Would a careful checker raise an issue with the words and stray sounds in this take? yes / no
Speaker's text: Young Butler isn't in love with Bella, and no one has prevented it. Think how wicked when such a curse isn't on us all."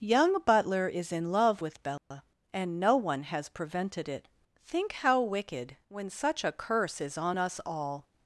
yes